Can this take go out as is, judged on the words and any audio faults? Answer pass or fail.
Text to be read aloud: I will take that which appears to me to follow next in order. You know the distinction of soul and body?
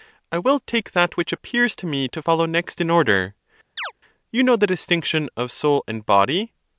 fail